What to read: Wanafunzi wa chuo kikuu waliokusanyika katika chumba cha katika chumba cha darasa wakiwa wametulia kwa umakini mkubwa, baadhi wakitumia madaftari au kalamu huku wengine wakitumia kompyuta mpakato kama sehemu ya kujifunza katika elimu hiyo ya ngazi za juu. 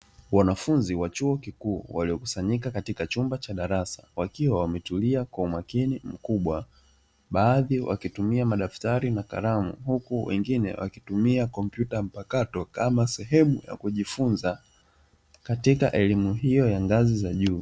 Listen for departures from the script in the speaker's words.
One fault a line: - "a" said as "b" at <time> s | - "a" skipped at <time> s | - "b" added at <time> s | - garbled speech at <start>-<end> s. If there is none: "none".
- "katika chumba cha" skipped at 3.5 s
- "au" said as "na" at 9.1 s